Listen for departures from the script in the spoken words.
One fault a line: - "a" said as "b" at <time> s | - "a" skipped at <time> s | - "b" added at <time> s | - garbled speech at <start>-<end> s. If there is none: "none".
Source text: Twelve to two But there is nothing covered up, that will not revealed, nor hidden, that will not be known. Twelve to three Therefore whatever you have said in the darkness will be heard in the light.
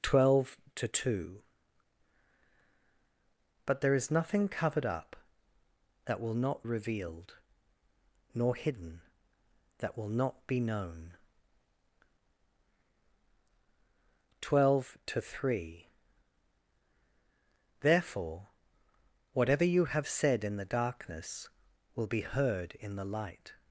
none